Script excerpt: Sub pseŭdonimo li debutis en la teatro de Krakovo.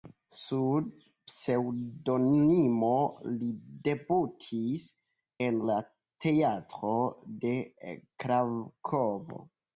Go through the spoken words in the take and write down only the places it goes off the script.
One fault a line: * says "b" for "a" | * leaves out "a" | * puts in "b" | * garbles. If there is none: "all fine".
all fine